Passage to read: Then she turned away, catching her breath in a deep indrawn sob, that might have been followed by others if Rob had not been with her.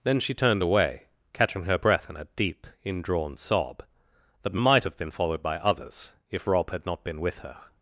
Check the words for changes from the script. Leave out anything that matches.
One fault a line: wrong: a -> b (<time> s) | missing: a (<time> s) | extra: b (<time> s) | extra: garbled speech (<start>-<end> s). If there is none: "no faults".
no faults